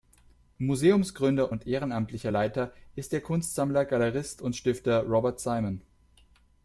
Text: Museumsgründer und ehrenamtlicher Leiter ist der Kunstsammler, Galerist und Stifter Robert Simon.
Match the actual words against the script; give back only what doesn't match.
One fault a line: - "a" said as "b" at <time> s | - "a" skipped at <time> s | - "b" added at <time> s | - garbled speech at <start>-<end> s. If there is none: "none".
none